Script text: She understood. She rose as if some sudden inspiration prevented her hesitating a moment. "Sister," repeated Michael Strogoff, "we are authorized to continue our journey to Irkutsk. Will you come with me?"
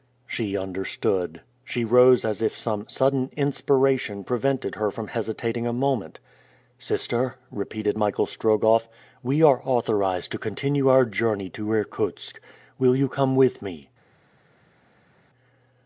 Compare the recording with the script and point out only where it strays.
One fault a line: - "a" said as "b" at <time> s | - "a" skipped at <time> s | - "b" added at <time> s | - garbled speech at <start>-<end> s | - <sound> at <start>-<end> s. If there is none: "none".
- "from" added at 4.9 s